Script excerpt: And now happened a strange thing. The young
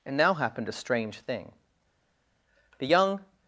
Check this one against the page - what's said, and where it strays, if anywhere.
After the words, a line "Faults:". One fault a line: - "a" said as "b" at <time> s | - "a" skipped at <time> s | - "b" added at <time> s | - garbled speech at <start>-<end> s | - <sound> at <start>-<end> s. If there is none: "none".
And now happened a strange thing. The young
Faults:
none